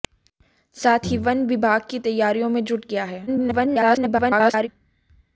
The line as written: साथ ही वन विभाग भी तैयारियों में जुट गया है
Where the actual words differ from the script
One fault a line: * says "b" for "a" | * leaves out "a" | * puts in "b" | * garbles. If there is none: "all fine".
* garbles